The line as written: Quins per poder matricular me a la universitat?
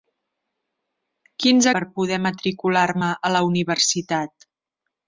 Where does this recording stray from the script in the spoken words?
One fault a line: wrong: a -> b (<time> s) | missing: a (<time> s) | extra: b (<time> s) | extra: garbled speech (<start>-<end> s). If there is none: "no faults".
no faults